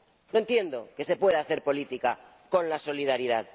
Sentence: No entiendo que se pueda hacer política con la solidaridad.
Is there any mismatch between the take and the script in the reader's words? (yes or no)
no